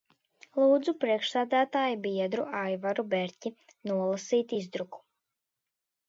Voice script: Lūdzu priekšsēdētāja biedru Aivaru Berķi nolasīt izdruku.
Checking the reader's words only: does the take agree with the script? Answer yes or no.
yes